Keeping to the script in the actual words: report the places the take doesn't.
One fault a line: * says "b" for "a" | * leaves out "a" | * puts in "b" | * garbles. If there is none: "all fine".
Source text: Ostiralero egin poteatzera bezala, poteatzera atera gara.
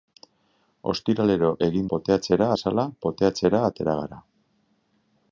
all fine